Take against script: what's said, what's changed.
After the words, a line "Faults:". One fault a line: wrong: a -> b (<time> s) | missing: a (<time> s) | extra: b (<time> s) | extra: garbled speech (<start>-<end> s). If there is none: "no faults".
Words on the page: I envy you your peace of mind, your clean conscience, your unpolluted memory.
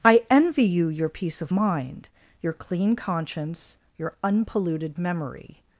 I envy you your peace of mind, your clean conscience, your unpolluted memory.
Faults:
no faults